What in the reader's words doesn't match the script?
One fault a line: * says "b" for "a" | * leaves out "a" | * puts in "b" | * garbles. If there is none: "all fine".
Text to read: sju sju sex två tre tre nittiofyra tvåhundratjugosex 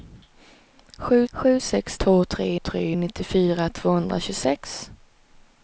all fine